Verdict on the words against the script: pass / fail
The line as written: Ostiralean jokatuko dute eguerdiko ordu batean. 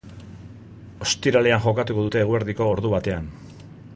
pass